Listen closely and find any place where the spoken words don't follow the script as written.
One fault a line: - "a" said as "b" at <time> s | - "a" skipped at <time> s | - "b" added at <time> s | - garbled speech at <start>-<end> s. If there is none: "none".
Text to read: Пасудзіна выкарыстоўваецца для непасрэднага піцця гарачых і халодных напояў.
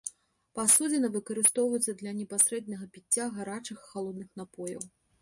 none